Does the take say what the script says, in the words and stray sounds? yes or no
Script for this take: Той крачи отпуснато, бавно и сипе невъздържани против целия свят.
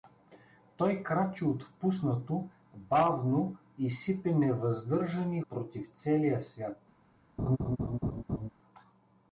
no